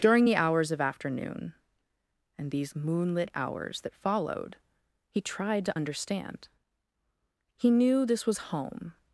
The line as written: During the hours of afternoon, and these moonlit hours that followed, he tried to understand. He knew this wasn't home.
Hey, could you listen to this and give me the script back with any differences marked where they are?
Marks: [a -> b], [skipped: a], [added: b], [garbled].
During the hours of afternoon, and these moonlit hours that followed, he tried to understand. He knew this [wasn't -> was] home.